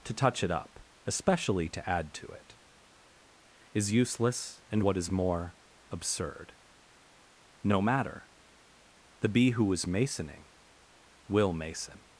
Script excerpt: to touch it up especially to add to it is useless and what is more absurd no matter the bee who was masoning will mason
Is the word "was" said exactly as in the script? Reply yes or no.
no